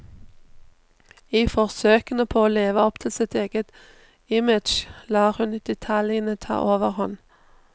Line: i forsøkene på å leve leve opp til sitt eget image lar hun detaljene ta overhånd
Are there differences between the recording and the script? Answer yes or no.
yes